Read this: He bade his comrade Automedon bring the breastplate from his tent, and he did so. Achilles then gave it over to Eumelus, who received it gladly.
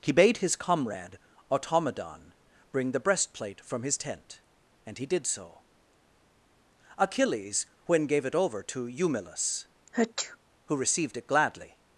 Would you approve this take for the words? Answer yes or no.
no